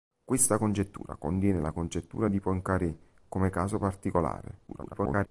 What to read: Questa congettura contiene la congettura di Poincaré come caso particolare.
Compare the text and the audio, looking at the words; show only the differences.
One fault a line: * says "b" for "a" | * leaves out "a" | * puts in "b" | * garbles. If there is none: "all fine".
* garbles